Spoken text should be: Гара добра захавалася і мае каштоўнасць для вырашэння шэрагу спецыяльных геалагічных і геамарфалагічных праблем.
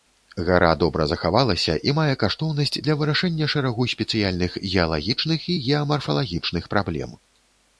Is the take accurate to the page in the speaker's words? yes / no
yes